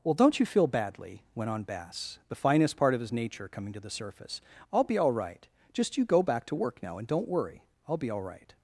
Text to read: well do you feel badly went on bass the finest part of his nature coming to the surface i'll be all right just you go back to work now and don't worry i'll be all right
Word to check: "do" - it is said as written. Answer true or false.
false